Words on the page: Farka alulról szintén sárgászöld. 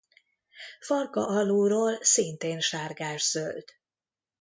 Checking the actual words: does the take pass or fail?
pass